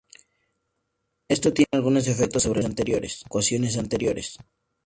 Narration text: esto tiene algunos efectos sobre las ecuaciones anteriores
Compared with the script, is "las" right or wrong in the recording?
wrong